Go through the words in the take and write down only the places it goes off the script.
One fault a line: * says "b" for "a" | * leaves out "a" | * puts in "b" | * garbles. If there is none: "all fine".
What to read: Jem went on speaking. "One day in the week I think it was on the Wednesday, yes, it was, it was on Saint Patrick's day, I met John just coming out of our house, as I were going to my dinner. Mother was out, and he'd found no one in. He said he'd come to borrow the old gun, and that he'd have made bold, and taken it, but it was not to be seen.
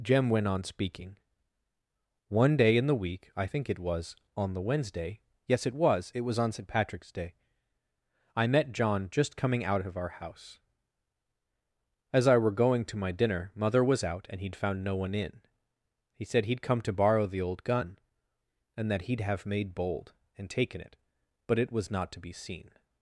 all fine